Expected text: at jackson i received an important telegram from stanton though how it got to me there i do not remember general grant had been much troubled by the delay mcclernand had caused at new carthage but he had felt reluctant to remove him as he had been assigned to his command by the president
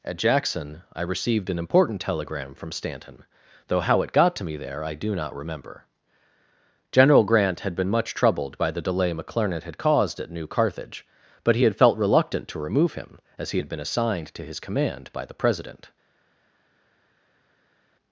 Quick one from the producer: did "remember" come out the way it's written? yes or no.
yes